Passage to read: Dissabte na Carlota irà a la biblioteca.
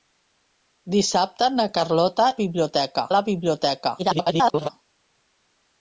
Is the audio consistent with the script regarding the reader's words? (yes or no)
no